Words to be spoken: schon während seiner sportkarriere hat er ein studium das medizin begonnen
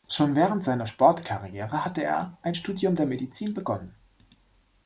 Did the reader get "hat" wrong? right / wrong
wrong